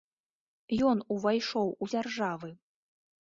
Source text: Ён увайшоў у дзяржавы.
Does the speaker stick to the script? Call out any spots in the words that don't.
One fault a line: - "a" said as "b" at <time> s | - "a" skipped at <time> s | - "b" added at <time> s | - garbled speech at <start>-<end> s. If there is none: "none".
none